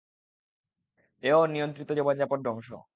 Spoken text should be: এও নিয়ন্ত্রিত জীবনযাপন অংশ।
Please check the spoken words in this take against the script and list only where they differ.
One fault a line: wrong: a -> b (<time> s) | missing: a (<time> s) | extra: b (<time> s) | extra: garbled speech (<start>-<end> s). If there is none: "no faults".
no faults